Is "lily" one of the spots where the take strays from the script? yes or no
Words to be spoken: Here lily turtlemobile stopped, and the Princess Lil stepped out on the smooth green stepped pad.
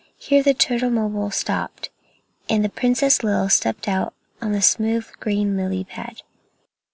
yes